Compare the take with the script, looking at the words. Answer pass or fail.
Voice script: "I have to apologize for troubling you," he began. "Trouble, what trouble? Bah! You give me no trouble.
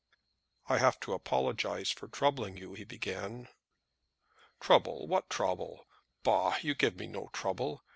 pass